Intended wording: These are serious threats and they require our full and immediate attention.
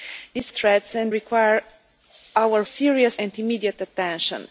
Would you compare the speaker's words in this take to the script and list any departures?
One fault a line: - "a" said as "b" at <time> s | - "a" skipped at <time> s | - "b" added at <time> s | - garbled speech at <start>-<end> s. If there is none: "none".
- "are serious" skipped at 0.5 s
- "they" skipped at 1.1 s
- "full" said as "serious" at 2.6 s